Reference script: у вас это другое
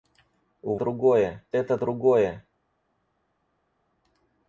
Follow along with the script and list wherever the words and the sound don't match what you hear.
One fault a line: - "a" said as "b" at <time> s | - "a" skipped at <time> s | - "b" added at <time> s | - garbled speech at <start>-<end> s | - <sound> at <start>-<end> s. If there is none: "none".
- "вас" said as "другое" at 0.7 s